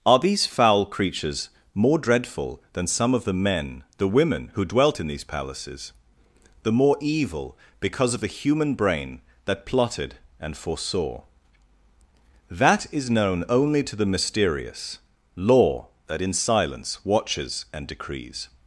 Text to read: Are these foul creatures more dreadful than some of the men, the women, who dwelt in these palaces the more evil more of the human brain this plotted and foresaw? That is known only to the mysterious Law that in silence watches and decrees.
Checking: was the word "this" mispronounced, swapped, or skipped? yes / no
yes